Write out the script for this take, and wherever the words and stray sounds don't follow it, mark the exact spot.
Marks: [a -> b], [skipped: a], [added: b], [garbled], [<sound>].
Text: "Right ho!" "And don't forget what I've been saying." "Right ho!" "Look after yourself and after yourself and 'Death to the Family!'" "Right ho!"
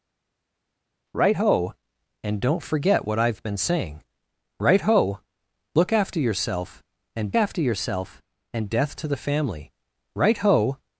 "Right ho!" "And don't forget what I've been saying." "Right ho!" "Look after yourself and after yourself and 'Death to the Family!'" "Right ho!"